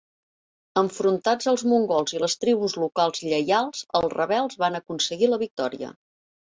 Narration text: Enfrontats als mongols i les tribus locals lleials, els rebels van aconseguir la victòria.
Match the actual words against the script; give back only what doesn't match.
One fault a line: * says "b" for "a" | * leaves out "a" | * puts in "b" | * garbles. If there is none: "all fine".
all fine